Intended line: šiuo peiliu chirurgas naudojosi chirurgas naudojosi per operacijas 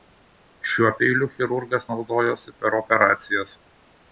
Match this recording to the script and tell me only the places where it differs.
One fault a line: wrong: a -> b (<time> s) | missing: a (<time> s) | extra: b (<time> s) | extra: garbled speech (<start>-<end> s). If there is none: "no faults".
missing: chirurgas naudojosi (2.5 s)